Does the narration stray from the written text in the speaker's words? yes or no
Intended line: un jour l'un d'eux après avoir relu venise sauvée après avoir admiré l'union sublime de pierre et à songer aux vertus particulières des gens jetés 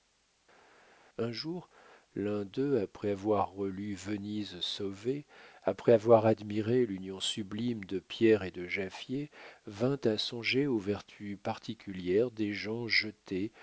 yes